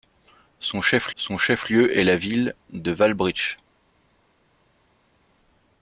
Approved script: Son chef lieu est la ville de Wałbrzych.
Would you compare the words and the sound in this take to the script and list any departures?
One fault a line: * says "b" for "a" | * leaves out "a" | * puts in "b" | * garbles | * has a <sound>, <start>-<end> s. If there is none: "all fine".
* puts in "son chef"